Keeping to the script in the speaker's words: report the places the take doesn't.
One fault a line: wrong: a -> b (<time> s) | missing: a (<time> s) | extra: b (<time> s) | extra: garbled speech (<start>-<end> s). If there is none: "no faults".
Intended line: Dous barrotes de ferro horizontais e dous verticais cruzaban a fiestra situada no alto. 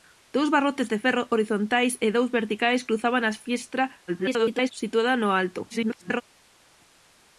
extra: garbled speech (4.1-4.7 s)
extra: garbled speech (5.7-6.2 s)